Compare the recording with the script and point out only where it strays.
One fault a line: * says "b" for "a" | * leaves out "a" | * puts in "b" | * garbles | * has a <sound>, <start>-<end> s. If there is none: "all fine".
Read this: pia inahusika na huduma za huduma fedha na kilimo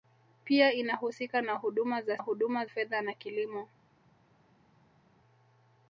all fine